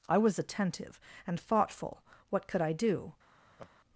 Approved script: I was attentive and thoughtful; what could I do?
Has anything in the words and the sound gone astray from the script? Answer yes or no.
yes